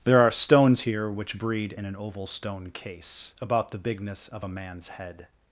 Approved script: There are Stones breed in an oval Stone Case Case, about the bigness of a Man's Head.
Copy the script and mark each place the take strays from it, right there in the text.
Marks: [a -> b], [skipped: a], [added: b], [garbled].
There are Stones [added: here which] breed in an oval Stone Case [skipped: Case,] about the bigness of a Man's Head.